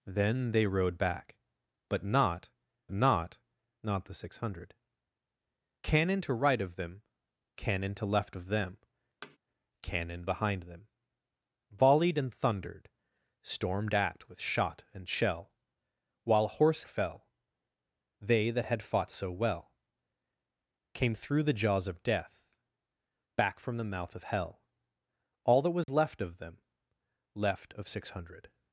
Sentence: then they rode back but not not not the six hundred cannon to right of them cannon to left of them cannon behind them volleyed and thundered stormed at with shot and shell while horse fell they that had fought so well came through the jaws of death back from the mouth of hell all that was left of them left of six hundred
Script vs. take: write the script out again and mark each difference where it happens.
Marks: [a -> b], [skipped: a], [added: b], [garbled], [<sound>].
then they rode back but not not not the six hundred cannon to right of them cannon to left of them [thud] cannon behind them volleyed and thundered stormed at with shot and shell while horse fell they that had fought so well came through the jaws of death back from the mouth of hell all that was [dropout] left of them left of six hundred